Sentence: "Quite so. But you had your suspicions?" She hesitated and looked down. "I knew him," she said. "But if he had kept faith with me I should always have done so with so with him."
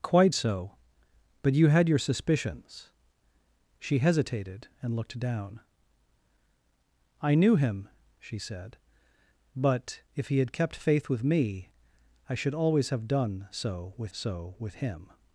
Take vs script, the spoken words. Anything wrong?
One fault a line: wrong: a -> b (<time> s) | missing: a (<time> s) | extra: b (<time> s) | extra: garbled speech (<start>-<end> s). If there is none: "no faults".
no faults